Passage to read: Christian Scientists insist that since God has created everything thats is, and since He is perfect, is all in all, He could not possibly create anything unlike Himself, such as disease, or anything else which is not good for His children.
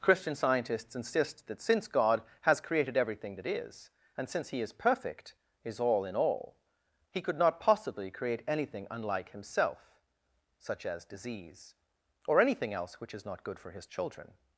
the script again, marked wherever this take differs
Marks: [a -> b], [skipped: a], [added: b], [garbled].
Christian Scientists insist that since God has created everything [thats -> that] is, and since He is perfect, is all in all, He could not possibly create anything unlike Himself, such as disease, or anything else which is not good for His children.